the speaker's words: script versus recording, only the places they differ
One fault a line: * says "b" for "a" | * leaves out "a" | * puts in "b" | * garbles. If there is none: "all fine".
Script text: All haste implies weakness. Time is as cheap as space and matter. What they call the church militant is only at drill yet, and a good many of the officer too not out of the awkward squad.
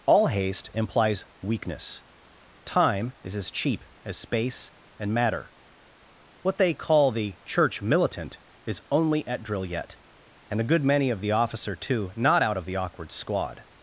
all fine